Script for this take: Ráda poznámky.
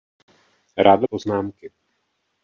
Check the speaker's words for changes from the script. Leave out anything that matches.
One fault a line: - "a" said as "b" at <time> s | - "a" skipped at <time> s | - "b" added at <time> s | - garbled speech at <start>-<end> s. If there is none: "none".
none